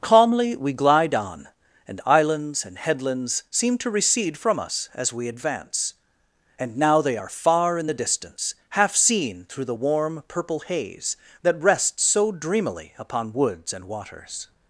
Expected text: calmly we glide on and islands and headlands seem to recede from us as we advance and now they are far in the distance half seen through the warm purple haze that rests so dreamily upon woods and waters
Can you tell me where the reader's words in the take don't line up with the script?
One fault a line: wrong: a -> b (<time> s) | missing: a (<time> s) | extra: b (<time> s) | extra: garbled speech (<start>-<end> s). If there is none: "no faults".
no faults